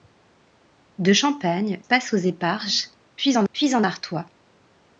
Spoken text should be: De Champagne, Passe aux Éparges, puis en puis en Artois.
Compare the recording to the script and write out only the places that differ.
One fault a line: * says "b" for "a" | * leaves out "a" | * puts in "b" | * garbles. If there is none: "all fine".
all fine